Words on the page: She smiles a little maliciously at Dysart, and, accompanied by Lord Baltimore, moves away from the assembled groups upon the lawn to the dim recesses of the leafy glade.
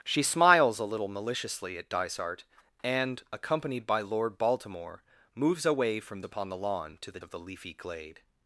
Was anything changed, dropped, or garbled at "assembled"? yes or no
yes